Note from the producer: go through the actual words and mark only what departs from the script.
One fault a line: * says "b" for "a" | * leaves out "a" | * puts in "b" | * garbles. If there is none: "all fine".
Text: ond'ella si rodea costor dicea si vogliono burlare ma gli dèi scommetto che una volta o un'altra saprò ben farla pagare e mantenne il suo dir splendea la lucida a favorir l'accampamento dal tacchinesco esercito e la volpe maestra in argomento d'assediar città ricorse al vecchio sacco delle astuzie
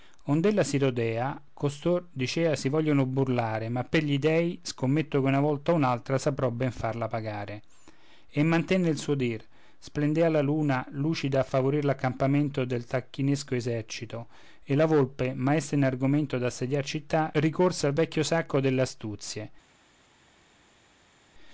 * puts in "per"
* puts in "luna"
* says "del" for "dal"